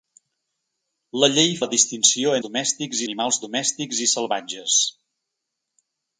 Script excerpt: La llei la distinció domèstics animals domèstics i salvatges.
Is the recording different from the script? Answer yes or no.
no